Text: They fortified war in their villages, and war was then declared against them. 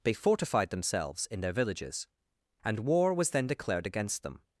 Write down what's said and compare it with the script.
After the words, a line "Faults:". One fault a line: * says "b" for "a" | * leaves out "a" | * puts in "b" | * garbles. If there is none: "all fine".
They fortified themselves in their villages, and war was then declared against them.
Faults:
* says "themselves" for "war"